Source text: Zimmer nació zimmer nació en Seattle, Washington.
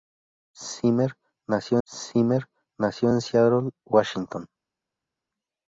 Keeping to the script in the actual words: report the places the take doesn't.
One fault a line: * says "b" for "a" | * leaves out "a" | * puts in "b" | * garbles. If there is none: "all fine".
all fine